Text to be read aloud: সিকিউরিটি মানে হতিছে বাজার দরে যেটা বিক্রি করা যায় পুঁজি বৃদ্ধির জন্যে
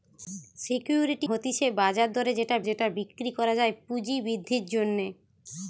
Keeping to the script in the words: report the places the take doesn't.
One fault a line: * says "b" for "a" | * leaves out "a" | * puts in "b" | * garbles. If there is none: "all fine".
* leaves out "মানে"
* puts in "যেটা"